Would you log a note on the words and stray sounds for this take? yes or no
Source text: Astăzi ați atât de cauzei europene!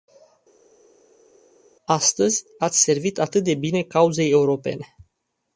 yes